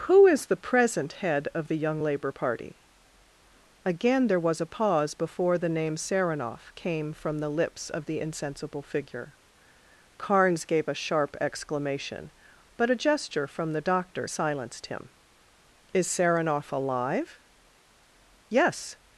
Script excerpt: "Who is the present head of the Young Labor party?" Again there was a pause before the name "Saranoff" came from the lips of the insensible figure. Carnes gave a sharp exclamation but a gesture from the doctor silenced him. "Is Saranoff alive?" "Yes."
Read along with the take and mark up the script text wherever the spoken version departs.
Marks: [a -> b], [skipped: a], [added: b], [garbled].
"Who is the present head of the Young Labor party?" Again there was a pause before the name "Saranoff" came from the lips of the insensible figure. Carnes gave a sharp exclamation but a gesture from the doctor silenced him. "Is Saranoff alive?" "Yes."